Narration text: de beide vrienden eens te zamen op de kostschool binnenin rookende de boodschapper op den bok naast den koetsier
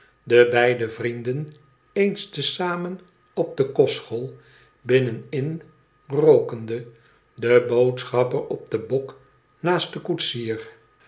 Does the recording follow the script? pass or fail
pass